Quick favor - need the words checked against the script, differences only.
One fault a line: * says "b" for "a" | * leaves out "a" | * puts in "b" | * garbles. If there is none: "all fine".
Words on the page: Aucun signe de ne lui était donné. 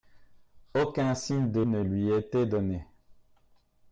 all fine